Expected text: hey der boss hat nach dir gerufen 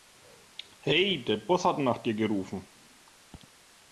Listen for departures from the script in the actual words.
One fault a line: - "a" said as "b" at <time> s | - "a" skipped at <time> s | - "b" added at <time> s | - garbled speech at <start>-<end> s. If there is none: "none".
none